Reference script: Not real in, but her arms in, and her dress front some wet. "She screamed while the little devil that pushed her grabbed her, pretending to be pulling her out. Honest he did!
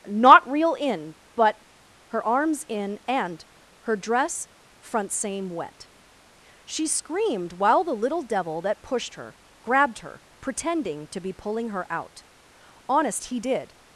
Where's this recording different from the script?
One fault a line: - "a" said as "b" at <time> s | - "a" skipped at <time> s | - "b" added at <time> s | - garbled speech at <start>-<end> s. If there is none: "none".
- "some" said as "same" at 5.1 s